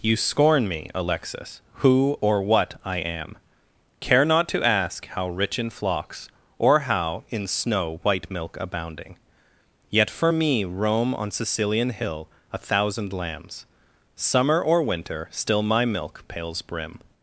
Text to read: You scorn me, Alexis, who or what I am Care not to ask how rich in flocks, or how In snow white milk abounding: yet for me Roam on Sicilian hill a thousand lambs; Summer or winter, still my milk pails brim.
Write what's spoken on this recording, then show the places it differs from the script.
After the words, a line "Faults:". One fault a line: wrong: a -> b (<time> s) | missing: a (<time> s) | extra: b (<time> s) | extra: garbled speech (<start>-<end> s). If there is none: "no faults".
You scorn me, Alexis, who or what I am Care not to ask how rich in flocks, or how In snow white milk abounding: yet for me Roam on Sicilian hill a thousand lambs; Summer or winter, still my milk pails brim.
Faults:
no faults